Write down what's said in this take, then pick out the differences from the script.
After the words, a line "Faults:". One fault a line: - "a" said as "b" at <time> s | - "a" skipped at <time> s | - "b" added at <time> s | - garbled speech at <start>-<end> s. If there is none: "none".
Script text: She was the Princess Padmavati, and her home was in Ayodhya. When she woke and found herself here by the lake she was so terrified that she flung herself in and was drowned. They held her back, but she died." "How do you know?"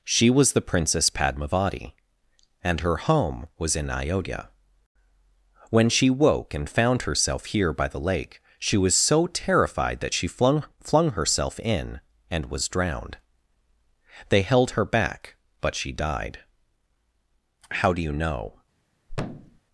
She was the Princess Padmavati, and her home was in Ayodhya. When she woke and found herself here by the lake she was so terrified that she flung flung herself in and was drowned. They held her back, but she died." "How do you know?"
Faults:
- "flung" added at 10.8 s